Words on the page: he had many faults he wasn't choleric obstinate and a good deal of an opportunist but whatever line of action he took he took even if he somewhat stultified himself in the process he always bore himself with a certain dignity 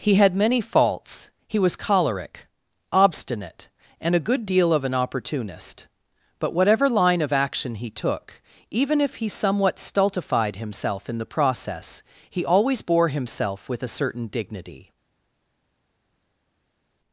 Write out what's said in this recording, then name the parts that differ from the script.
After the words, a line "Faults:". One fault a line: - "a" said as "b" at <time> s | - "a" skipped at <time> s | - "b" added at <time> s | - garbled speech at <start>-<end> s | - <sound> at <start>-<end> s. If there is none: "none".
he had many faults he was choleric obstinate and a good deal of an opportunist but whatever line of action he took even if he somewhat stultified himself in the process he always bore himself with a certain dignity
Faults:
- "wasn't" said as "was" at 1.6 s
- "he took" skipped at 8.4 s